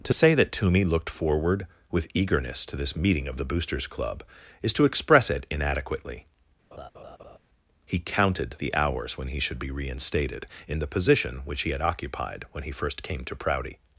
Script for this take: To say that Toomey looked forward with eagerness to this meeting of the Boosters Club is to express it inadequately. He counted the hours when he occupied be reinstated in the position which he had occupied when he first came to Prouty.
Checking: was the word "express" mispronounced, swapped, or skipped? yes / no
no